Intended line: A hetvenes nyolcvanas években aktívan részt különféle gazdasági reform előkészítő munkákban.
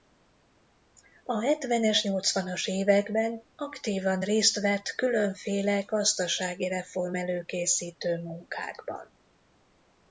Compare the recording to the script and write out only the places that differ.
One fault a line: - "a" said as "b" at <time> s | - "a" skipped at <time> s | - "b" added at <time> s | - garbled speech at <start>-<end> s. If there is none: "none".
- "vett" added at 4.6 s